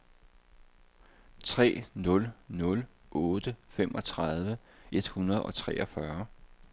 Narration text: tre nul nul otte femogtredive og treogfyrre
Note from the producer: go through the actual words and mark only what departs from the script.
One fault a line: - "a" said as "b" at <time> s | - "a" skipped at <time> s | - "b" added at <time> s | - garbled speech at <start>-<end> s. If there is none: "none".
- "et hundrede" added at 4.9 s